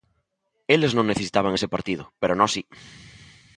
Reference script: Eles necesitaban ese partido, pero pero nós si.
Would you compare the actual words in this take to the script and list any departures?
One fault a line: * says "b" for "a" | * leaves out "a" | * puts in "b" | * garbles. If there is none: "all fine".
* puts in "non"
* leaves out "pero"